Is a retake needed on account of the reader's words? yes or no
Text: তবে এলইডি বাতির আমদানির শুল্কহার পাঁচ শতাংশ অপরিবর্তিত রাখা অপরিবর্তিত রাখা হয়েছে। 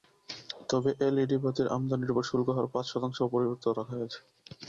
yes